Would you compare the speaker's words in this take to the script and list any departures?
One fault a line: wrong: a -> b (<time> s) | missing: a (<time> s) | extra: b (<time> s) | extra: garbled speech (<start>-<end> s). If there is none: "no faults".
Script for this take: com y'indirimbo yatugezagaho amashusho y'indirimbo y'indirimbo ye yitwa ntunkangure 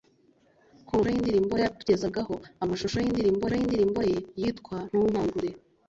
no faults